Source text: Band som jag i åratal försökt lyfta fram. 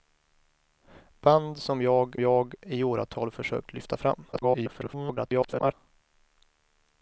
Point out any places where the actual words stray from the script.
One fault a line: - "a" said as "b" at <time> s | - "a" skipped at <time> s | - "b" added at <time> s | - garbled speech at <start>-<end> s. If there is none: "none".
- "jag" added at 2.2 s
- garbled speech at 4.3-5.7 s